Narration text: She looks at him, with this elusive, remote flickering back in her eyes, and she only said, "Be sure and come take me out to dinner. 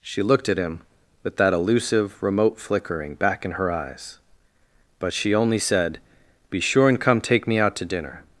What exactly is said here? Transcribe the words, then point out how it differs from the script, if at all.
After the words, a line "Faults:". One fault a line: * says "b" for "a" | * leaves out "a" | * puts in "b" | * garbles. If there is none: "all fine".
She looked at him, with that elusive, remote flickering back in her eyes, but she only said, "Be sure and come take me out to dinner.
Faults:
* says "looked" for "looks"
* says "that" for "this"
* says "but" for "and"